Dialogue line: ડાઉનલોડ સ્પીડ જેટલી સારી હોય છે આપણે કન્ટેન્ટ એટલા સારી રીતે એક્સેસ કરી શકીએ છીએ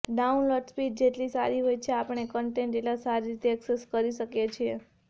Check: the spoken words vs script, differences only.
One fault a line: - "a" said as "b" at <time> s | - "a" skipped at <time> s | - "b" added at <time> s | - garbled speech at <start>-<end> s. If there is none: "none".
none